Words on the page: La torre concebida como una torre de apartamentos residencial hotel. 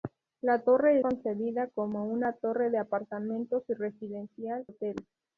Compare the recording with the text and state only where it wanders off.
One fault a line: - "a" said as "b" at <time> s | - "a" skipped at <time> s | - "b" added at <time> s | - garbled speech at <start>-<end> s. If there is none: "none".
none